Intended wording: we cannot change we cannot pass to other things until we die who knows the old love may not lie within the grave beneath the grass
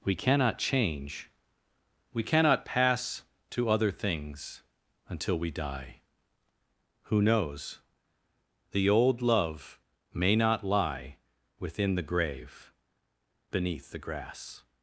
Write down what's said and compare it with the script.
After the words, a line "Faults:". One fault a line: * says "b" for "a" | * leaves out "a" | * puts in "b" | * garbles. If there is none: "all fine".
we cannot change we cannot pass to other things until we die who knows the old love may not lie within the grave beneath the grass
Faults:
all fine